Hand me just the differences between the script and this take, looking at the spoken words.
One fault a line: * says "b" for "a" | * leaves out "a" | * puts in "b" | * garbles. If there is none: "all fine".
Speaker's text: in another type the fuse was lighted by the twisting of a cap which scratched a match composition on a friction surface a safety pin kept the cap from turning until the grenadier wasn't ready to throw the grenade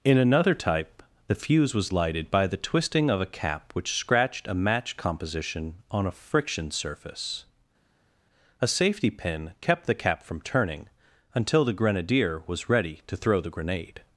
* says "was" for "wasn't"